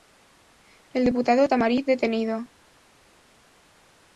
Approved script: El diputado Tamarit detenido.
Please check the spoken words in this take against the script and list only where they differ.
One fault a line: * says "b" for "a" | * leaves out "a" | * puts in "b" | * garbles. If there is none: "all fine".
all fine